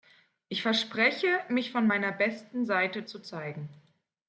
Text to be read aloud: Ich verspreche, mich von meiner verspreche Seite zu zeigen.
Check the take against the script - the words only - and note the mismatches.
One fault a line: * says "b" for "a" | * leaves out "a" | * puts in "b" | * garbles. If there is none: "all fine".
* says "besten" for "verspreche"